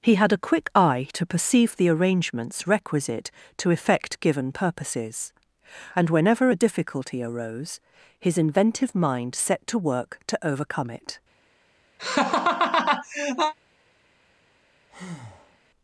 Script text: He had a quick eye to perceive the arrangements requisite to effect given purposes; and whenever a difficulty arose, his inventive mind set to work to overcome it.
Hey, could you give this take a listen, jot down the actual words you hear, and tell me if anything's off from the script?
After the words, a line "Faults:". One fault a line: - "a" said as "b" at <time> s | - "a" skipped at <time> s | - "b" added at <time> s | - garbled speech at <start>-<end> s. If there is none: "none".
He had a quick eye to perceive the arrangements requisite to effect given purposes; and whenever a difficulty arose, his inventive mind set to work to overcome it.
Faults:
none